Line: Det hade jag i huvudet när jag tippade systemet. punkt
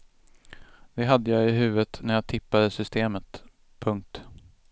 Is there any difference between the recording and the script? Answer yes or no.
no